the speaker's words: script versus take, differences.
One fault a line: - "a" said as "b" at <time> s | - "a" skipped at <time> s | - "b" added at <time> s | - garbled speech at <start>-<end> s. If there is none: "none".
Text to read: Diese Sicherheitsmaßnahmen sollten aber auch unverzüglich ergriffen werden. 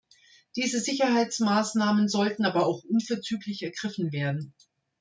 none